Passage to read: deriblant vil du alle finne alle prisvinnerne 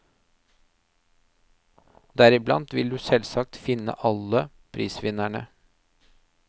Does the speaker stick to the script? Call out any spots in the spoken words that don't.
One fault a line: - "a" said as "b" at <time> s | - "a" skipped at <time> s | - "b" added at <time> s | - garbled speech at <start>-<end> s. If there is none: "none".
- "alle" said as "selvsagt" at 3.0 s